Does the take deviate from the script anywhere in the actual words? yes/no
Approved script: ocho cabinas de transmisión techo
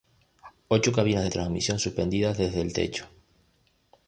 yes